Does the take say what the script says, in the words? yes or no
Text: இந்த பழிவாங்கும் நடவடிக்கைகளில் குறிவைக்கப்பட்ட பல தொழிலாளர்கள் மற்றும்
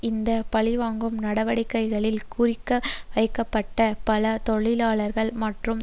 yes